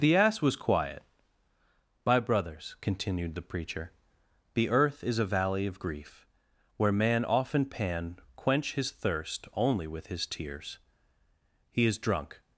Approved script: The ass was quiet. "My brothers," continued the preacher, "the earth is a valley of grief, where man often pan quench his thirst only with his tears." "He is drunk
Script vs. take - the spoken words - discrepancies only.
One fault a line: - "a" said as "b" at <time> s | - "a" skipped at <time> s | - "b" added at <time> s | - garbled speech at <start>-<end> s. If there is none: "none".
none